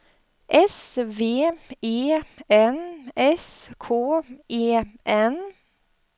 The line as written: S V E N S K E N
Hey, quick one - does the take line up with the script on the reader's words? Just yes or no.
yes